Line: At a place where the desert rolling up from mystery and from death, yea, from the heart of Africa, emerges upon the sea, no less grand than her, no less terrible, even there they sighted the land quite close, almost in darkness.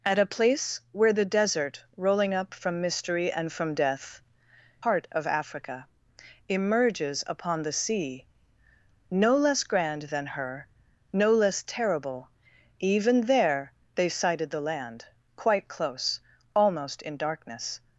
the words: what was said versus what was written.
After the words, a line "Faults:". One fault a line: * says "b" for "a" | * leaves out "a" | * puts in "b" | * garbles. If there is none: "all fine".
At a place where the desert rolling up from mystery and from death, heart of Africa, emerges upon the sea, no less grand than her, no less terrible, even there they sighted the land quite close, almost in darkness.
Faults:
* leaves out "yea from the"